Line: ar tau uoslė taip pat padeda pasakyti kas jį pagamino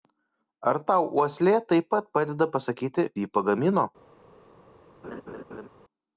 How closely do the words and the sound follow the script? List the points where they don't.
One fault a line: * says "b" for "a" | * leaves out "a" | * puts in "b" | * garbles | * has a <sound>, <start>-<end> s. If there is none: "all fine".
* leaves out "kas"
* has a laugh, 5.0-5.7 s